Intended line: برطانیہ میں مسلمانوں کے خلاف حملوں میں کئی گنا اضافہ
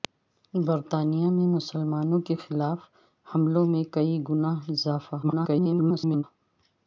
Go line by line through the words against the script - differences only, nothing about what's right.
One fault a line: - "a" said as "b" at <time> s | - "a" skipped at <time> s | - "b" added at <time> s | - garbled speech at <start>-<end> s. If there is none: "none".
- garbled speech at 5.2-6.2 s